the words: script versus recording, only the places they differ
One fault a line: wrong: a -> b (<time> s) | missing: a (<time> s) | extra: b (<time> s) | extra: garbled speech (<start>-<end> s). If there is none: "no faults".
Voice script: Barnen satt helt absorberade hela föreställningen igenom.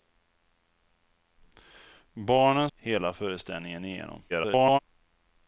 missing: satt helt absorberade (2.7 s)
extra: garbled speech (4.3-4.8 s)